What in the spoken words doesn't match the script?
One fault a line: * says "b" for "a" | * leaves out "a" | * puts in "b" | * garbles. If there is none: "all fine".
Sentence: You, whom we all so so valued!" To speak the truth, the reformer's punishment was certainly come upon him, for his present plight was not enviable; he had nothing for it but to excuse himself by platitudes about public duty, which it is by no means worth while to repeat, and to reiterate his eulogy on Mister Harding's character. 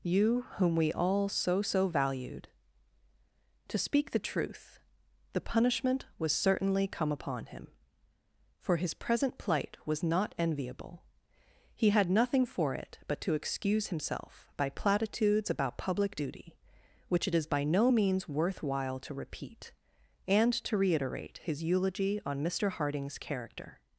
* leaves out "reformer's"